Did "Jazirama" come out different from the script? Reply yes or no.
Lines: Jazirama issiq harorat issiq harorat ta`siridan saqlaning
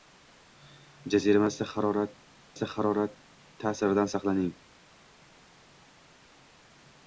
no